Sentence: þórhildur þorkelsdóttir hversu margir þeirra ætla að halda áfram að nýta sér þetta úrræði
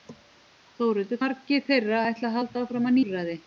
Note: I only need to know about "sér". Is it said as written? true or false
false